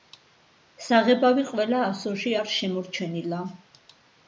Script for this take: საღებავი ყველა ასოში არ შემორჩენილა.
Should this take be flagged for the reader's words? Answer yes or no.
no